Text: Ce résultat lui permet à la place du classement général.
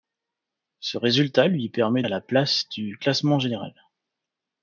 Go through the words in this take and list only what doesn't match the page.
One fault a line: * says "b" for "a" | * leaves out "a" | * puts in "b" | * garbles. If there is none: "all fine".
all fine